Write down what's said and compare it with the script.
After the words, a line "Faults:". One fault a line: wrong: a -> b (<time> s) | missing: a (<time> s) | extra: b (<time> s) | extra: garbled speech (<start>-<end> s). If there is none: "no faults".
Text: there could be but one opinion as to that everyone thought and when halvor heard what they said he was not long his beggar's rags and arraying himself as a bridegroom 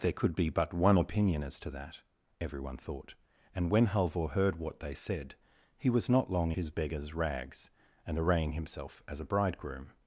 there could be but one opinion as to that everyone thought and when halvor heard what they said he was not long his beggar's rags and arraying himself as a bridegroom
Faults:
no faults